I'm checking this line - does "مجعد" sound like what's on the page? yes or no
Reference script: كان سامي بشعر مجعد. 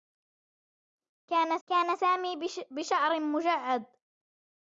yes